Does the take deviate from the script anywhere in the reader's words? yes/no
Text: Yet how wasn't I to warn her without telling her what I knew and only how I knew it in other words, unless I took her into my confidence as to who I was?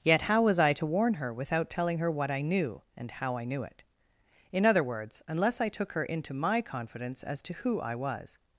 yes